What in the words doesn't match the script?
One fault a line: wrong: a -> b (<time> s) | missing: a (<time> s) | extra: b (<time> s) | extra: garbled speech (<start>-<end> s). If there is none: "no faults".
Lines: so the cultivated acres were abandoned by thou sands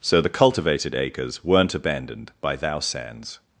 wrong: were -> weren't (1.4 s)